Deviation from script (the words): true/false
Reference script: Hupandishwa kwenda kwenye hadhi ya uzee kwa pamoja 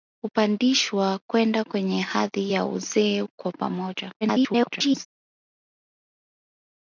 true